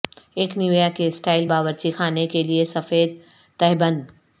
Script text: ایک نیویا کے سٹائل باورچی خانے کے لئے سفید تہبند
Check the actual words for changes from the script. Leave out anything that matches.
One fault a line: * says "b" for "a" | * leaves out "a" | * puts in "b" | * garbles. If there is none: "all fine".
all fine